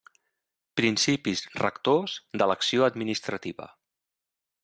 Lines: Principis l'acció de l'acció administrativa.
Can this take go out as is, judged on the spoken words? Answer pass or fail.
fail